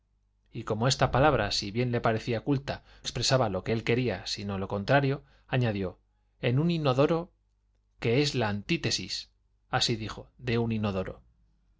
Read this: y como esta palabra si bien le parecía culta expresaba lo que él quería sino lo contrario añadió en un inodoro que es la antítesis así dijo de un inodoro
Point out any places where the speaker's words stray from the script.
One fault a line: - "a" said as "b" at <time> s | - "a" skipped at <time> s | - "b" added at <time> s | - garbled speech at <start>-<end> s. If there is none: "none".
none